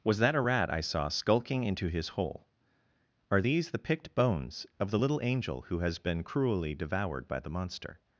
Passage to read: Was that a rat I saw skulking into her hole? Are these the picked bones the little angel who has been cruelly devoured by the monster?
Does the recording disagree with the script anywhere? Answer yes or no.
yes